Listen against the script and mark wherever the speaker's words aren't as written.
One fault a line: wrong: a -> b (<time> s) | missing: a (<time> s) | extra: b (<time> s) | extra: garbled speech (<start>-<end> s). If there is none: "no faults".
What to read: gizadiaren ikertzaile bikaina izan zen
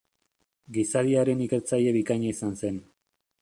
no faults